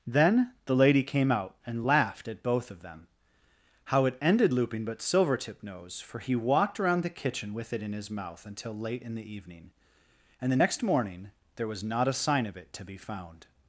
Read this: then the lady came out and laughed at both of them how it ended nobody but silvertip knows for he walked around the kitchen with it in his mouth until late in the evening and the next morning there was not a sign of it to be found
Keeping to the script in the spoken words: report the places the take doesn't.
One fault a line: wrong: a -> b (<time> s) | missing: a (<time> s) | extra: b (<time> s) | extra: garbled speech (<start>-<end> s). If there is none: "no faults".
wrong: nobody -> looping (4.5 s)